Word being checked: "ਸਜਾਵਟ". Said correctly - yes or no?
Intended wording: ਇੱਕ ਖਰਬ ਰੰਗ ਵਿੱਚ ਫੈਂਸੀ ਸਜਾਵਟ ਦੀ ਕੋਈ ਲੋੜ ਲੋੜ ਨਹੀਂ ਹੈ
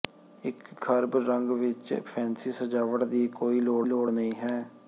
yes